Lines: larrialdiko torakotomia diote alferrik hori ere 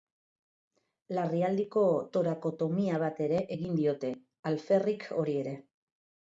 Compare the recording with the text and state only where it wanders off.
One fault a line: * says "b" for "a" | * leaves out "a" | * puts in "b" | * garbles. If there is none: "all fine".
* puts in "bat ere egin"